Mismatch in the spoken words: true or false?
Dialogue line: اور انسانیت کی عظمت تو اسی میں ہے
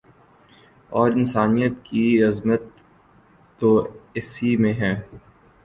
false